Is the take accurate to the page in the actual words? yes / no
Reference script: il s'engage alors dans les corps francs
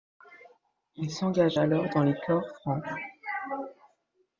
yes